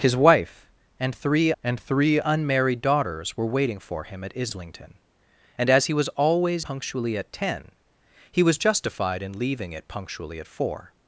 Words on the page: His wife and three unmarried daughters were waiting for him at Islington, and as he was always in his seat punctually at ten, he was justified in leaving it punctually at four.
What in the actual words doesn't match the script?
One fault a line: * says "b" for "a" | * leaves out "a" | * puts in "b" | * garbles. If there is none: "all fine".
* puts in "and three"
* leaves out "in his seat"